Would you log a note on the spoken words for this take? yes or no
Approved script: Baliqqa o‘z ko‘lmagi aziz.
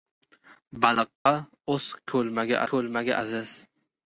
yes